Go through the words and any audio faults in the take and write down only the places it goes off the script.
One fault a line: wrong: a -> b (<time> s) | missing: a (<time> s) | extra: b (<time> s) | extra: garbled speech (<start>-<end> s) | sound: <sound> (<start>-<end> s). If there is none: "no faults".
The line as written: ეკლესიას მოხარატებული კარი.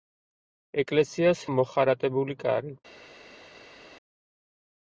no faults